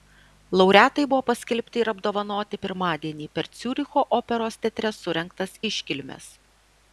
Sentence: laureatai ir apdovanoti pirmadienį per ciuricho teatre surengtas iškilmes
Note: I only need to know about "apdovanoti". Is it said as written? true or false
true